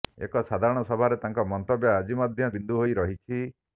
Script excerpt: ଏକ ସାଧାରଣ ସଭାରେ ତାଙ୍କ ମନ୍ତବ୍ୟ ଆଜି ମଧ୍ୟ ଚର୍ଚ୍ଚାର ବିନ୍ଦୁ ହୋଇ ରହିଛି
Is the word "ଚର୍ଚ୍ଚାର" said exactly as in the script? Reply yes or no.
no